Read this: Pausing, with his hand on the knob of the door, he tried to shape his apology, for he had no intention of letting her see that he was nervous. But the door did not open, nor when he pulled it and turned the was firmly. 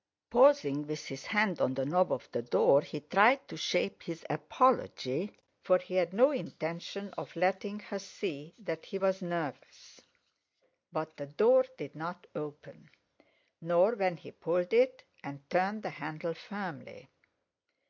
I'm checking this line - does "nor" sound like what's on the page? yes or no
yes